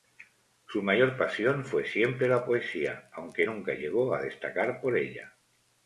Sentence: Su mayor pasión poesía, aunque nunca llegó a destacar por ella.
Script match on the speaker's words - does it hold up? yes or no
no